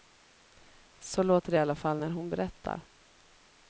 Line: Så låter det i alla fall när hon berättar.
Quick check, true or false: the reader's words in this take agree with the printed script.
true